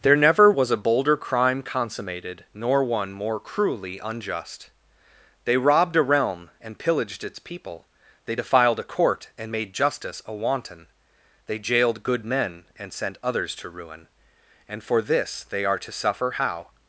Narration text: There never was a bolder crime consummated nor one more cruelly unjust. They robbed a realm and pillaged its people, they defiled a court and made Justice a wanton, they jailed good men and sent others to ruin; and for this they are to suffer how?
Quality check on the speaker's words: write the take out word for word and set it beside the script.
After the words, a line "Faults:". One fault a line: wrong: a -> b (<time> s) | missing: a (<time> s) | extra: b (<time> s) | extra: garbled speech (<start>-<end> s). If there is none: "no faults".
There never was a bolder crime consummated nor one more cruelly unjust. They robbed a realm and pillaged its people, they defiled a court and made Justice a wanton, they jailed good men and sent others to ruin; and for this they are to suffer how?
Faults:
no faults